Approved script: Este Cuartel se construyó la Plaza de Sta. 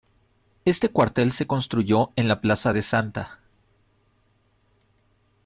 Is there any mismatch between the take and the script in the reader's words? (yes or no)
yes